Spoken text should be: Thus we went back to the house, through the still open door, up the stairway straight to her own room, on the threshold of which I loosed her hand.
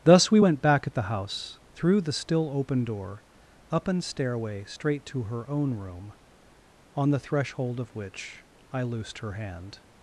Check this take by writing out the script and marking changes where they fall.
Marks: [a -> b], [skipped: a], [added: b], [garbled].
Thus we went back [to -> at] the house, through the still open door, up [the -> an] stairway straight to her own room, on the threshold of which I loosed her hand.